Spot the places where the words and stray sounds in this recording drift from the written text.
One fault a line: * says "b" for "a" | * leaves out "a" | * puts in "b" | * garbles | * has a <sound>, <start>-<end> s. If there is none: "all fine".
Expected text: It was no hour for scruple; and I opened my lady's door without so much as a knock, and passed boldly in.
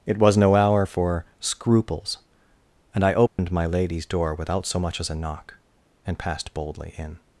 * says "scruples" for "scruple"
* has a dropout, 3.3-3.4 s